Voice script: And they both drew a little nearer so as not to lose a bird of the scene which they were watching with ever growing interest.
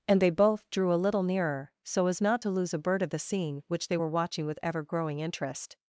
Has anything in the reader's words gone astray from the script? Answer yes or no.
no